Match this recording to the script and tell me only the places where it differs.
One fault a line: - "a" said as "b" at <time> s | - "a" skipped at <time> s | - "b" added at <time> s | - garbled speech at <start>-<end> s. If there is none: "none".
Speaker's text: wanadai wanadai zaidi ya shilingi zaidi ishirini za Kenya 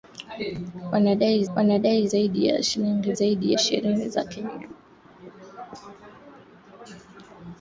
none